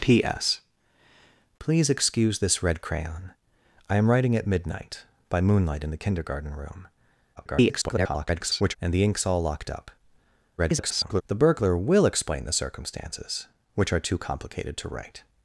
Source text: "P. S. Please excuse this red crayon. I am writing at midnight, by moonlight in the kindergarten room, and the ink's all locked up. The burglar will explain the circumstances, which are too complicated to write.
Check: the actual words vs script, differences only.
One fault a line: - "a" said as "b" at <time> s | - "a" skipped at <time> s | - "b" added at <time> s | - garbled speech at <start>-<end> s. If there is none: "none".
- garbled speech at 7.4-8.8 s
- garbled speech at 10.6-11.2 s